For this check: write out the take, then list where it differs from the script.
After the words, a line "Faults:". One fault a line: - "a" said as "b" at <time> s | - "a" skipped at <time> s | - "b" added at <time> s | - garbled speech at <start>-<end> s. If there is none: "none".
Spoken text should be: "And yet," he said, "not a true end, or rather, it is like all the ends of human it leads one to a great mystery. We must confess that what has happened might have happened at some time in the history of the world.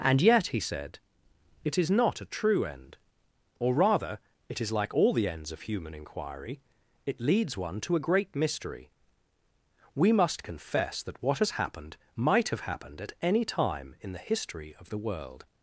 "And yet," he said, "it is not a true end, or rather, it is like all the ends of human inquiry, it leads one to a great mystery. We must confess that what has happened might have happened at any time in the history of the world.
Faults:
- "it is" added at 1.6 s
- "inquiry" added at 5.9 s
- "some" said as "any" at 13.2 s